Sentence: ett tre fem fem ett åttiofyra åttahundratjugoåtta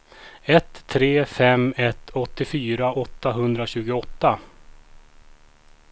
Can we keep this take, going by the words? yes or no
no